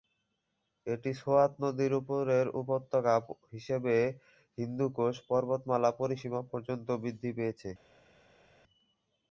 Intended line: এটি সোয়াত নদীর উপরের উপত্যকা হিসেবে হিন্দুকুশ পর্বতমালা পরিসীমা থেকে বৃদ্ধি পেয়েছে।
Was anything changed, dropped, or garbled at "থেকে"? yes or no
yes